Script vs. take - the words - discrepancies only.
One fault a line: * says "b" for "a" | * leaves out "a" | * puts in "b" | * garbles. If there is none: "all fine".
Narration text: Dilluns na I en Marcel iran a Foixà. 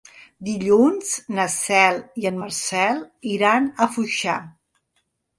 * puts in "Cel"